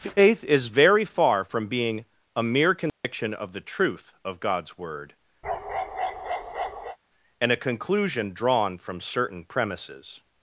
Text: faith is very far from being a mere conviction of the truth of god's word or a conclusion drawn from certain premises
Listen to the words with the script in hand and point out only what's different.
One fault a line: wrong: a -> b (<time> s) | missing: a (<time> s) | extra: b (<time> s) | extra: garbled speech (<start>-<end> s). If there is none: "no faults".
wrong: or -> and (7.4 s)